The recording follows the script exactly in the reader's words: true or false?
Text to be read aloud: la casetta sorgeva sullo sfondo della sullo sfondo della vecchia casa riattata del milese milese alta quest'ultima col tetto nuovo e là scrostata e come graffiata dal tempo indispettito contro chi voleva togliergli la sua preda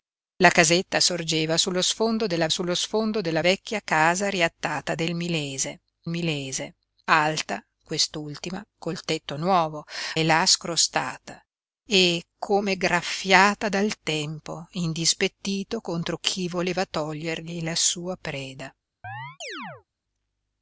true